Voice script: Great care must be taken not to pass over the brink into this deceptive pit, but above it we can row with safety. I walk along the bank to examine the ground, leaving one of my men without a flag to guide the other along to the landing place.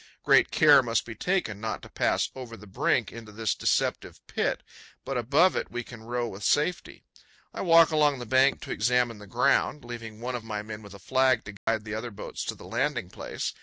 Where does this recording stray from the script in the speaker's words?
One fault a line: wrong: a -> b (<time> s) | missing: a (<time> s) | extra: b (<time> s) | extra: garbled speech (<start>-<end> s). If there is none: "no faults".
wrong: without -> with (10.8 s)
wrong: along -> boats (12.1 s)